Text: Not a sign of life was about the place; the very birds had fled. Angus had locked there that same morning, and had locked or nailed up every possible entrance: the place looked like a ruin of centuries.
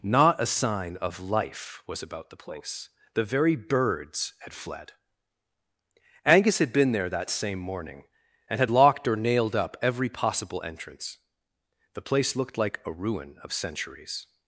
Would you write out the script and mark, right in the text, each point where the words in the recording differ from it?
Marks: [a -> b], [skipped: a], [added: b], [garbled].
Not a sign of life was about the place; the very birds had fled. Angus had [locked -> been] there that same morning, and had locked or nailed up every possible entrance: the place looked like a ruin of centuries.